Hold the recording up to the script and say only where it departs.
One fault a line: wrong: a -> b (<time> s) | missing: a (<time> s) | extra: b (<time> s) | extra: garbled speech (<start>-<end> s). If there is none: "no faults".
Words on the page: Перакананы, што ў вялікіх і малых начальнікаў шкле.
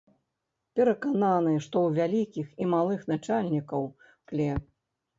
no faults